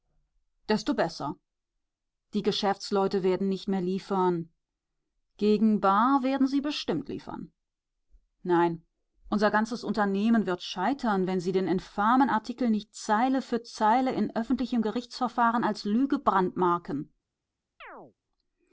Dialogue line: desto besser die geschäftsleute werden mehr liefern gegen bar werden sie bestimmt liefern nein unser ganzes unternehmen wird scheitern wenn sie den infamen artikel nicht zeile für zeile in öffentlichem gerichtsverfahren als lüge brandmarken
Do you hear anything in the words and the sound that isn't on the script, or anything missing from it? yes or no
yes